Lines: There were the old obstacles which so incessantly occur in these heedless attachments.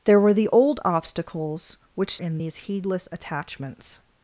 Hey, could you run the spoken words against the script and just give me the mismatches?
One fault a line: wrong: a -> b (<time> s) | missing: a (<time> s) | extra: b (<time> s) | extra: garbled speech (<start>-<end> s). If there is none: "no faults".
missing: so incessantly occur (2.2 s)